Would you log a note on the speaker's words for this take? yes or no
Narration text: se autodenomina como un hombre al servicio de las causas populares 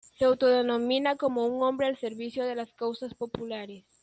no